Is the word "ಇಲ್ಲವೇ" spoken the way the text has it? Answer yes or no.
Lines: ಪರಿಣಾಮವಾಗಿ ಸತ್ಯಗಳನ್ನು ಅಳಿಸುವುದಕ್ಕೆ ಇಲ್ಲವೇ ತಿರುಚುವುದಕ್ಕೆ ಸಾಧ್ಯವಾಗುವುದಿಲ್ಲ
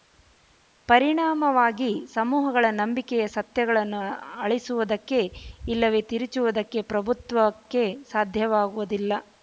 yes